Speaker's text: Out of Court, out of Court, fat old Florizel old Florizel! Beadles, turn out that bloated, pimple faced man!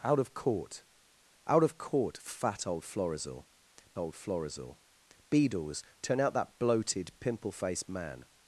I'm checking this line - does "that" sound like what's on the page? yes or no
yes